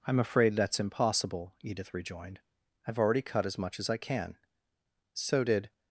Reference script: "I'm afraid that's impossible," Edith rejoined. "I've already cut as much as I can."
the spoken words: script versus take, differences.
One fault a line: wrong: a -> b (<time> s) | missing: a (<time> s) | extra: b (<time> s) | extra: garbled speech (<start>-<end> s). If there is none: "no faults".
extra: So did (5.1 s)